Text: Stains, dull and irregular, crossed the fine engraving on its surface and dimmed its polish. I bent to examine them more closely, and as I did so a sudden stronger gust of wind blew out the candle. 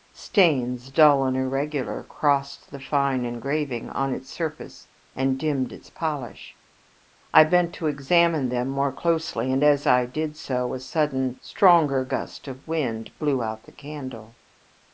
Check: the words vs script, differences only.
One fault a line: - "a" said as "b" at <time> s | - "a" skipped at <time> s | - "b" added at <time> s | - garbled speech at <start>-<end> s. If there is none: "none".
none